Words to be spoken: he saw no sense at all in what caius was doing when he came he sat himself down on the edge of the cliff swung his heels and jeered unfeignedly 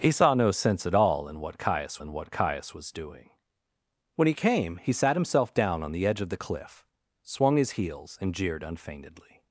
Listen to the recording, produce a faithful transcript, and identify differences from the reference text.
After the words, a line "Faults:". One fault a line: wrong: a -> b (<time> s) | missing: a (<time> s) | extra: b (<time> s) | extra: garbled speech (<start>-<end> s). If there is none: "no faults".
he saw no sense at all in what caius in what caius was doing when he came he sat himself down on the edge of the cliff swung his heels and jeered unfeignedly
Faults:
extra: in what caius (2.0 s)